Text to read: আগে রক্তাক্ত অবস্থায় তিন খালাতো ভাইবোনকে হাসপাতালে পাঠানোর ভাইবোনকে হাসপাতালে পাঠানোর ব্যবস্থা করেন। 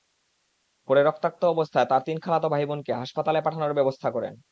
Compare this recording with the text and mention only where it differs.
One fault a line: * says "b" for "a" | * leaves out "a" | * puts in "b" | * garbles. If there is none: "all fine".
* says "পরে" for "আগে"
* puts in "তাঁর"
* leaves out "ভাইবোনকে হাসপাতালে পাঠানোর"